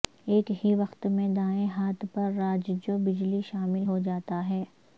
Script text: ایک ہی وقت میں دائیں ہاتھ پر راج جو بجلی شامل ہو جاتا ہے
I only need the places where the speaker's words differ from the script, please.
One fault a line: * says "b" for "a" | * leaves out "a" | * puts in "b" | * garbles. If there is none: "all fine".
all fine